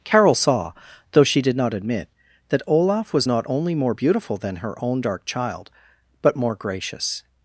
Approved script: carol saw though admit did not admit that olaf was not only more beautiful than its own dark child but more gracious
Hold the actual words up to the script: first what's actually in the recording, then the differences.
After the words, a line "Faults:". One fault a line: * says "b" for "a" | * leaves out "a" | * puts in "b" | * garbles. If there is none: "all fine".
carol saw though she did not admit that olaf was not only more beautiful than her own dark child but more gracious
Faults:
* says "she" for "admit"
* says "her" for "its"